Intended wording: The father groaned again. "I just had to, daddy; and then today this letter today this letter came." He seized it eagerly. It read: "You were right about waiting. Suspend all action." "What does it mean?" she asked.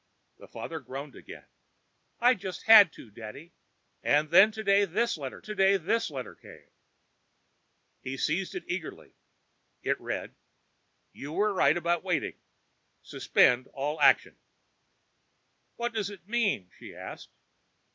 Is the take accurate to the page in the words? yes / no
yes